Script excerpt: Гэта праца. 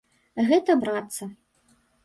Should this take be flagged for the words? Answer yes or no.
no